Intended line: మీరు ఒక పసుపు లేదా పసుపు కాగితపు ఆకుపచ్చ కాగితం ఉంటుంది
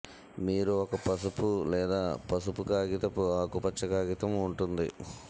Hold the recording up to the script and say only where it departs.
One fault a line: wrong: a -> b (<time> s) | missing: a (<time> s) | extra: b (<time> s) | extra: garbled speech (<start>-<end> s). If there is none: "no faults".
no faults